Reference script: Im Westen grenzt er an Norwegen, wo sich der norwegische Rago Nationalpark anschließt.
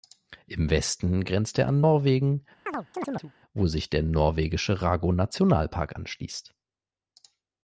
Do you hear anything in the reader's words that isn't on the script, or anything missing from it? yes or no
no